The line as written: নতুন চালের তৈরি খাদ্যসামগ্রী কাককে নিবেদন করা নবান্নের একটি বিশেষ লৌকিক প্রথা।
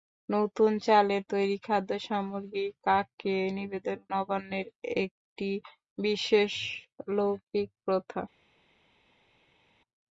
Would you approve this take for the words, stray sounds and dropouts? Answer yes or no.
no